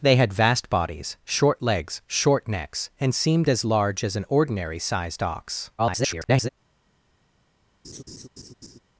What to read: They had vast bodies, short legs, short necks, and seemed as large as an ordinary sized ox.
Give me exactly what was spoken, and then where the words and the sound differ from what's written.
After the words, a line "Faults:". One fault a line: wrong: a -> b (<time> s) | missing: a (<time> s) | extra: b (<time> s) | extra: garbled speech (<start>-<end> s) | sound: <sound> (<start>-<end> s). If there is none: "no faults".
They had vast bodies, short legs, short necks, and seemed as large as an ordinary sized ox. [garbled]
Faults:
extra: garbled speech (5.8-6.5 s)
sound: laugh (7.8-8.8 s)